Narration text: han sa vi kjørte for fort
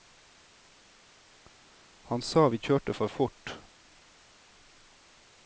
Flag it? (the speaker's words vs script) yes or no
no